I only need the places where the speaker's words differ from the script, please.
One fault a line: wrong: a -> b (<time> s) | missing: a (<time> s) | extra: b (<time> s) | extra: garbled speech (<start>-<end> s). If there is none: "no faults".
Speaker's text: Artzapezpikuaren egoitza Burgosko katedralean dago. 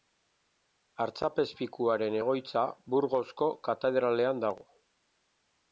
no faults